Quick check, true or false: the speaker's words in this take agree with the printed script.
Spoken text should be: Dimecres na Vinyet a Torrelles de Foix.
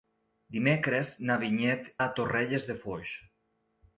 true